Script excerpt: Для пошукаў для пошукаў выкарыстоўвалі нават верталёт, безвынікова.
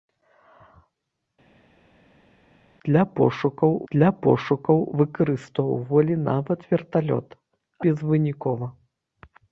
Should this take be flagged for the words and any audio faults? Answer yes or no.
no